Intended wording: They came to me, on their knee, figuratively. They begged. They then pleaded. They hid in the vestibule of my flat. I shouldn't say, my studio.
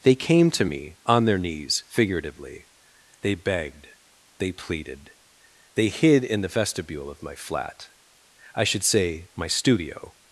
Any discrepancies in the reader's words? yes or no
yes